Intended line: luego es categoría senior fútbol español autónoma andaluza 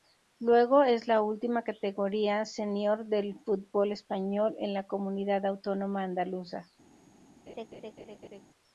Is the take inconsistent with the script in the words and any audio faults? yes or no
yes